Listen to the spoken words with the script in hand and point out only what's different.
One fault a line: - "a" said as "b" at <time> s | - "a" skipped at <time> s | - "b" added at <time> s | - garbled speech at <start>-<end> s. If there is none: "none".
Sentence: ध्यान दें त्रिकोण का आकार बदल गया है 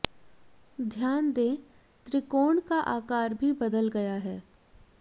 - "भी" added at 3.3 s